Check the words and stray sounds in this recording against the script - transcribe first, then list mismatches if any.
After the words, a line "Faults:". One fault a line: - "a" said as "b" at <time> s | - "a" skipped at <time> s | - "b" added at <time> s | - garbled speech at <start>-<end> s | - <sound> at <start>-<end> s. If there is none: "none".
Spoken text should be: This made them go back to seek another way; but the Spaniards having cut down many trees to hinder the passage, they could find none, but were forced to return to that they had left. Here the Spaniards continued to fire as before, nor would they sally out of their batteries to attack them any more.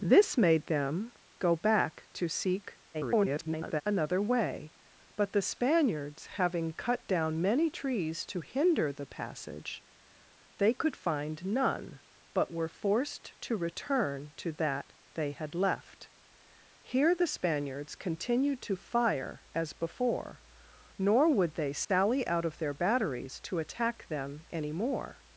This made them go back to seek [garbled] another way; but the Spaniards having cut down many trees to hinder the passage, they could find none, but were forced to return to that they had left. Here the Spaniards continued to fire as before, nor would they sally out of their batteries to attack them any more.
Faults:
- garbled speech at 2.9-3.8 s
- dropout at 21.8-21.9 s